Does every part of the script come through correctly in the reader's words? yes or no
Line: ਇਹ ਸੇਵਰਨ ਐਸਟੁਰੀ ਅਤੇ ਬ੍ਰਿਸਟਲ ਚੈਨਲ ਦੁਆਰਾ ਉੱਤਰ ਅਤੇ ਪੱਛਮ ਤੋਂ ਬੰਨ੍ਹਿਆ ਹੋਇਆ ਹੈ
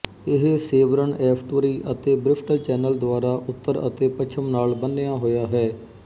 no